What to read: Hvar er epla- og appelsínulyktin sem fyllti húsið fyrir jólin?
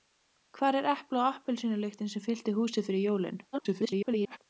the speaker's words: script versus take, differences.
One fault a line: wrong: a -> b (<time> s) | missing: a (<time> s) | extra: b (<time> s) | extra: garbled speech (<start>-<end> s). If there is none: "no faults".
extra: garbled speech (3.5-4.4 s)